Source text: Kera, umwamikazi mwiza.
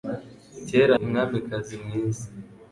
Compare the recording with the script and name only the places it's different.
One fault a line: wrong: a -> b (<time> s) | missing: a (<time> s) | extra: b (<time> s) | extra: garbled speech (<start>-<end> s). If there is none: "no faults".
no faults